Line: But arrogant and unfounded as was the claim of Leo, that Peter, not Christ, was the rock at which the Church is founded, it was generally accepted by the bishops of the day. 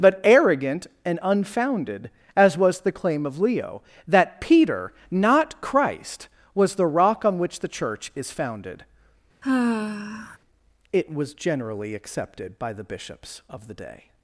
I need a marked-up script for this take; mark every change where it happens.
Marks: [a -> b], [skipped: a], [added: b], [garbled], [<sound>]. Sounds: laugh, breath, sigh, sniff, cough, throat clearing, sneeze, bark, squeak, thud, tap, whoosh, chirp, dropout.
But arrogant and unfounded as was the claim of Leo, that Peter, not Christ, was the rock [at -> on] which the Church is founded, [sigh] it was generally accepted by the bishops of the day.